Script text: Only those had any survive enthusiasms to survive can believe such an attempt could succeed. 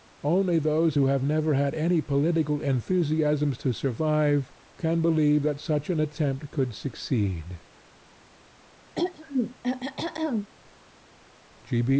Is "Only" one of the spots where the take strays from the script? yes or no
no